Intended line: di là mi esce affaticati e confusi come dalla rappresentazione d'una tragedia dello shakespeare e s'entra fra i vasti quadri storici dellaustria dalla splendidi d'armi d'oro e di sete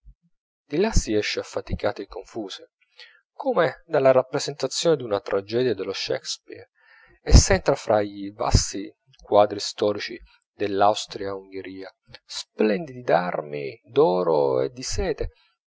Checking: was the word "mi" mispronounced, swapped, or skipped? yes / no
yes